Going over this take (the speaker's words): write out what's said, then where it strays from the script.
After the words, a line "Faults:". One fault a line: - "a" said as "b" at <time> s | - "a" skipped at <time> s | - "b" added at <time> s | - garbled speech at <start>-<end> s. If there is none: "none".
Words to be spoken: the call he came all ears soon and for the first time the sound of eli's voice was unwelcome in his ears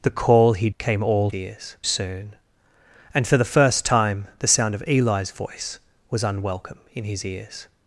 the call he came all ears soon and for the first time the sound of eli's voice was unwelcome in his ears
Faults:
none